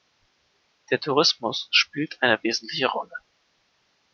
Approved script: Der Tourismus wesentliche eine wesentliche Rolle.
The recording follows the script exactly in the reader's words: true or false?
false